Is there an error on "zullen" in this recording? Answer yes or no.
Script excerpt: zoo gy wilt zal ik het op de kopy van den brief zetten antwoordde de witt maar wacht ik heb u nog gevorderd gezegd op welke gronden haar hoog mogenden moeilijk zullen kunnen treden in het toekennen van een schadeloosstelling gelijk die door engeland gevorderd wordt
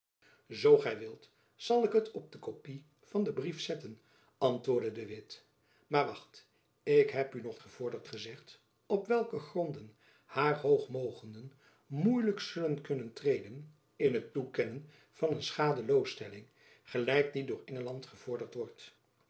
no